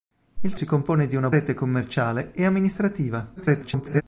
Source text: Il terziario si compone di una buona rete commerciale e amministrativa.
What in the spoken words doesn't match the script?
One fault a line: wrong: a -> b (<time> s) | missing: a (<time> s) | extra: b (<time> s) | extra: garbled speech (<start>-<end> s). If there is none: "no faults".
missing: terziario (0.6 s)
missing: buona (1.3 s)
extra: garbled speech (3.4-4.0 s)